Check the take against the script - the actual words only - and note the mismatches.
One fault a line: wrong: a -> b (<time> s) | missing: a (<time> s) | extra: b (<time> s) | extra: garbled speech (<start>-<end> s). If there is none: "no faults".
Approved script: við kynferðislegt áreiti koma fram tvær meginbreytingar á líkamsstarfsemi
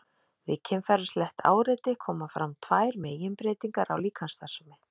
no faults